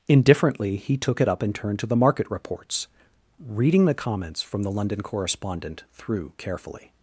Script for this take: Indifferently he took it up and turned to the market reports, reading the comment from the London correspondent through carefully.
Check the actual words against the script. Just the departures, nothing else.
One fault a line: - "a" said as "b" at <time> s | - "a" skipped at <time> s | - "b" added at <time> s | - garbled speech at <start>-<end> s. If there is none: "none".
- "comment" said as "comments" at 3.9 s